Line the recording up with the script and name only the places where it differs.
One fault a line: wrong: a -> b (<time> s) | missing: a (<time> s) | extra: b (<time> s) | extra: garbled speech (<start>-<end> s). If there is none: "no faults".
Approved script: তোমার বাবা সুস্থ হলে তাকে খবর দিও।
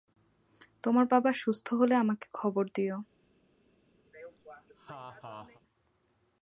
wrong: তাকে -> আমাকে (1.9 s)